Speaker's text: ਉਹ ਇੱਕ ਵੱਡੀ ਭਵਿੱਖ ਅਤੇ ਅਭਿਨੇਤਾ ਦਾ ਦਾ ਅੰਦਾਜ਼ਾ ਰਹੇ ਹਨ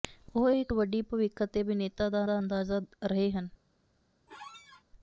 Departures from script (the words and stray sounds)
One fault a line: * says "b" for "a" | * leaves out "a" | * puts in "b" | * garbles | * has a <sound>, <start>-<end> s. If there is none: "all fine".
* has a squeak, 4.3-4.8 s